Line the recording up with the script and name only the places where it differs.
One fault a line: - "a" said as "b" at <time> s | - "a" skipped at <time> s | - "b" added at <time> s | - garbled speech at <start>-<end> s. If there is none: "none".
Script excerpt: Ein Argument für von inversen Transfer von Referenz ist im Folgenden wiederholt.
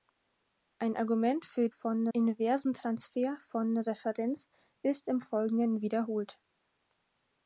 none